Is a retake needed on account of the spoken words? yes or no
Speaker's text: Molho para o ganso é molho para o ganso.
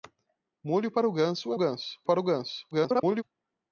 yes